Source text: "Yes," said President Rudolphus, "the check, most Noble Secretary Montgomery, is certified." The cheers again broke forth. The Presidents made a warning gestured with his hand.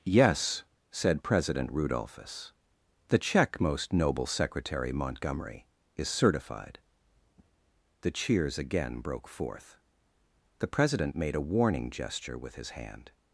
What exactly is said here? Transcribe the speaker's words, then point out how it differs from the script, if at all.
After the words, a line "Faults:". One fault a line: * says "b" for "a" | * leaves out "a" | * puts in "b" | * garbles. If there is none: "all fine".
"Yes," said President Rudolphus, "the check, most Noble Secretary Montgomery, is certified." The cheers again broke forth. The President made a warning gesture with his hand.
Faults:
* says "President" for "Presidents"
* says "gesture" for "gestured"